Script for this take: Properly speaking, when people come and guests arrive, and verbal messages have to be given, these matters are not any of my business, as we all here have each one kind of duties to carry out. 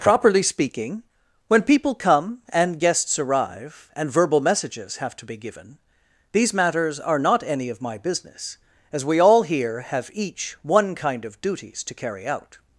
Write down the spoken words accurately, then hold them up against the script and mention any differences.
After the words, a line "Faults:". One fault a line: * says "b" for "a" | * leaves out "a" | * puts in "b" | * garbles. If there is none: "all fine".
Properly speaking, when people come and guests arrive, and verbal messages have to be given, these matters are not any of my business, as we all here have each one kind of duties to carry out.
Faults:
all fine